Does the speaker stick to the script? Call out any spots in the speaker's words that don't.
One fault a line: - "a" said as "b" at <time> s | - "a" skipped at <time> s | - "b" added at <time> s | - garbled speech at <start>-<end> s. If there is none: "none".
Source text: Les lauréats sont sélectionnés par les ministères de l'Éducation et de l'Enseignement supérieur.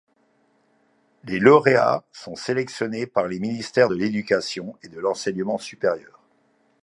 none